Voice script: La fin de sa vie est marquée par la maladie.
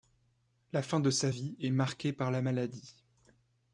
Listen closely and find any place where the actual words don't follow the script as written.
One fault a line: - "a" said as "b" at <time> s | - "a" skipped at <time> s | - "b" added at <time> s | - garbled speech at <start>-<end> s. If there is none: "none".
none